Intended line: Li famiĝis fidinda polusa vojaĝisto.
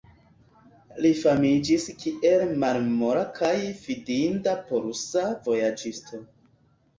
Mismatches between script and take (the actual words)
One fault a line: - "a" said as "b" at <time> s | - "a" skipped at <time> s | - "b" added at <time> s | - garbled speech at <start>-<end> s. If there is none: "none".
- "kiel malmola kaj" added at 2.0 s